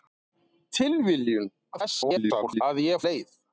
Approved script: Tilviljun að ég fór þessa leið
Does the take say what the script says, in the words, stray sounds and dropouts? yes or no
no